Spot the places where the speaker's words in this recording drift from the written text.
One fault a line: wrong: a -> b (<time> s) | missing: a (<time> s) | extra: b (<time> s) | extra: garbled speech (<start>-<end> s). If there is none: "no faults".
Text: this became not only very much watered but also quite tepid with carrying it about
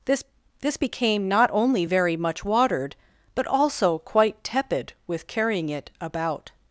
extra: this (0.6 s)